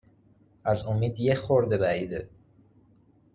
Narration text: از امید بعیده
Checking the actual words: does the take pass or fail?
fail